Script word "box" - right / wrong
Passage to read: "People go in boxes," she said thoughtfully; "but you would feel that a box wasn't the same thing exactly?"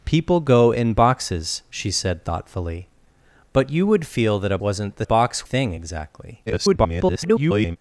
wrong